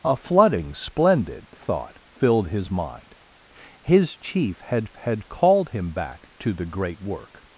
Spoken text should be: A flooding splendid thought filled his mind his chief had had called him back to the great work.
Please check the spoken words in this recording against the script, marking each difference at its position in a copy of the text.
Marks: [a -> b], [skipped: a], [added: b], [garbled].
A flooding splendid thought filled his mind his chief had had called him back to the great work.